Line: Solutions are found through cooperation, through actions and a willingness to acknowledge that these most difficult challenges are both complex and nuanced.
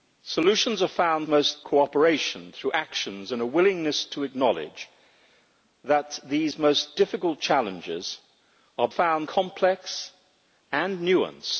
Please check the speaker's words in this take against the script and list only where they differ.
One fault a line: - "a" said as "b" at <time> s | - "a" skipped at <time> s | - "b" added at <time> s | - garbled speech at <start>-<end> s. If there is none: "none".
- "through" said as "most" at 1.3 s
- "both" said as "found" at 8.9 s